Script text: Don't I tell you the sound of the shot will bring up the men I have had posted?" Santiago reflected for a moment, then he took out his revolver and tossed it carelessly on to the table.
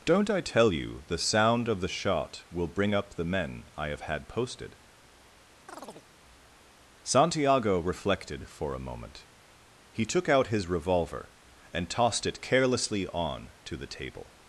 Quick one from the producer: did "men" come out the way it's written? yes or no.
yes